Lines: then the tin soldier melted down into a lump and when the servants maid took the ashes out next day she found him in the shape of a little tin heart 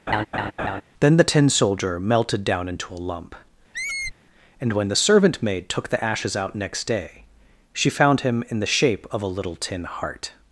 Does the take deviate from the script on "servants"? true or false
true